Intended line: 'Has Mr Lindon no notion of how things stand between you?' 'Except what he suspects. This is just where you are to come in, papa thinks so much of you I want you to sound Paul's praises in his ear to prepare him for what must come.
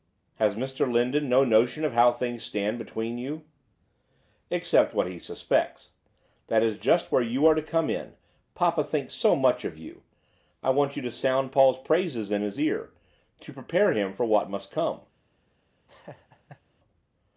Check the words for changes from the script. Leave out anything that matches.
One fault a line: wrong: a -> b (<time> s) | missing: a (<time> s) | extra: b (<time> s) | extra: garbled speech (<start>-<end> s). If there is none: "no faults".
wrong: This -> That (6.5 s)